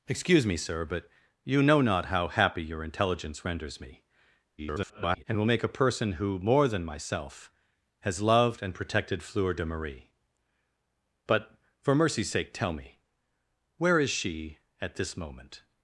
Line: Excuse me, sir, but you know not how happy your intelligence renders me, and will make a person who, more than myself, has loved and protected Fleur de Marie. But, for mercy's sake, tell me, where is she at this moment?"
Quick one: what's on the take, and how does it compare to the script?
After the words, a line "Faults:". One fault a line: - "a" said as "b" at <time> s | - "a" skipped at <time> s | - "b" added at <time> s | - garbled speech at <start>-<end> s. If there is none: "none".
Excuse me, sir, but you know not how happy your intelligence renders me, [garbled] and will make a person who, more than myself, has loved and protected Fleur de Marie. But, for mercy's sake, tell me, where is she at this moment?"
Faults:
- garbled speech at 4.6-5.2 s